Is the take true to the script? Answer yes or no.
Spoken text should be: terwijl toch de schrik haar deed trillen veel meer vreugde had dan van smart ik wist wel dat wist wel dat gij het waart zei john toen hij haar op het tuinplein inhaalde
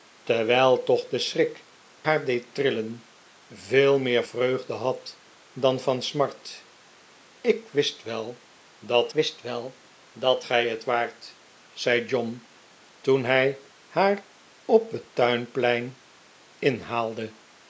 yes